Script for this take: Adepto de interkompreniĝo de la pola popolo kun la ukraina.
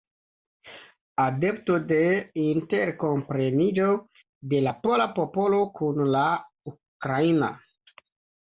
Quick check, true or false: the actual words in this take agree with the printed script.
true